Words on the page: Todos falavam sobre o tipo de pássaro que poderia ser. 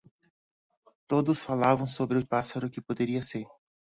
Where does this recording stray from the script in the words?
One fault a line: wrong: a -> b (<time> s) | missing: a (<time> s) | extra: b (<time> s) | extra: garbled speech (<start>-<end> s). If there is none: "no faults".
missing: tipo de (2.2 s)